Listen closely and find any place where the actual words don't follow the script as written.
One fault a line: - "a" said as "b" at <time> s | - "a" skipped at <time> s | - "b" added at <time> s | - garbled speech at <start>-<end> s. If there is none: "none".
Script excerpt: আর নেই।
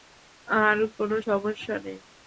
- "কোনো সমস্যা" added at 1.0 s